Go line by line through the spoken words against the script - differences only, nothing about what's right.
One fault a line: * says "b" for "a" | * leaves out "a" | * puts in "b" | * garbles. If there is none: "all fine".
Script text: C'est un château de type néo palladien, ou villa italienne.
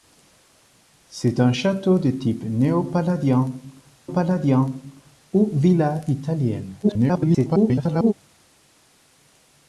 * puts in "palladien"
* garbles